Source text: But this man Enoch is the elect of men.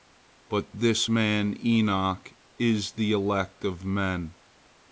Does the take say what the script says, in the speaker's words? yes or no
yes